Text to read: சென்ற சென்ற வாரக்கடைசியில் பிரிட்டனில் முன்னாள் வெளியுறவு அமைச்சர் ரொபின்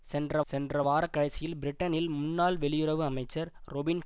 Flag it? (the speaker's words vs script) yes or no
no